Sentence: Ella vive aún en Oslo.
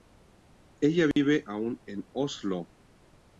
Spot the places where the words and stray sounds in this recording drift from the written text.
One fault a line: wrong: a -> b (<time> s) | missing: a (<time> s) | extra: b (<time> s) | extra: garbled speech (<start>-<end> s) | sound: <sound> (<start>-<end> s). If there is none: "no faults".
sound: dropout (1.1-1.2 s)